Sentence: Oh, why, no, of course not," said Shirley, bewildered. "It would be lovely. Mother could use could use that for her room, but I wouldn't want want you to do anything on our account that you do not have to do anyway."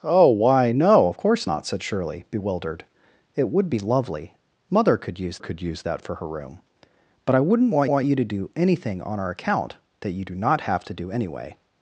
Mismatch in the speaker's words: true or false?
false